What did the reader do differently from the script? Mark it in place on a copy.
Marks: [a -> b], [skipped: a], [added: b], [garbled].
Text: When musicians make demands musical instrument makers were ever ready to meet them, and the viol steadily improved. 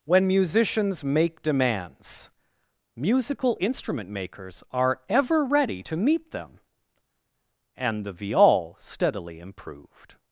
When musicians make demands musical instrument makers [were -> are] ever ready to meet them, and the viol steadily improved.